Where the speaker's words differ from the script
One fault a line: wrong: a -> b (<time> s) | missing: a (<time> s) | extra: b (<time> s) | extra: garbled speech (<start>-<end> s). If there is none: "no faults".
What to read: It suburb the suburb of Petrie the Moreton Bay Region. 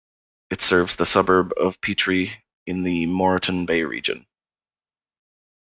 wrong: suburb -> serves (0.6 s)
extra: in (2.6 s)